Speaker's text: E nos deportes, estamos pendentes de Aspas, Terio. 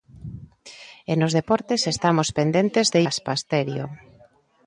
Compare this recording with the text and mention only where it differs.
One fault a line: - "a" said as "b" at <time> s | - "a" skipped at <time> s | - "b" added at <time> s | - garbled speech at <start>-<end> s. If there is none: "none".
none